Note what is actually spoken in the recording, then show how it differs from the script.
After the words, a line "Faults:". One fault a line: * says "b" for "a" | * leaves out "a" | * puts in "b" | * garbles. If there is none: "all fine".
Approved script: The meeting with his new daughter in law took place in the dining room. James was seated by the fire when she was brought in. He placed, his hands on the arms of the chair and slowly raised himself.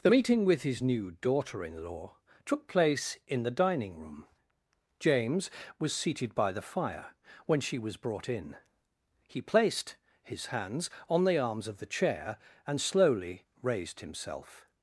The meeting with his new daughter in law took place in the dining room. James was seated by the fire when she was brought in. He placed, his hands on the arms of the chair and slowly raised himself.
Faults:
all fine